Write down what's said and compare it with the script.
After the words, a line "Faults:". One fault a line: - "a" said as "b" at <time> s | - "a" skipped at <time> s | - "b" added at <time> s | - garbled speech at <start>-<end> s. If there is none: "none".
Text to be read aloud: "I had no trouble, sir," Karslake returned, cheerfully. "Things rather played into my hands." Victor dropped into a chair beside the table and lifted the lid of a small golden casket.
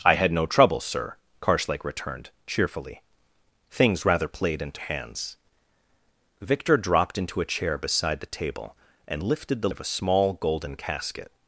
"I had no trouble, sir," Karslake returned, cheerfully. "Things rather played into hands." Victor dropped into a chair beside the table and lifted the of a small golden casket.
Faults:
- "my" skipped at 4.8 s
- "lid" skipped at 9.7 s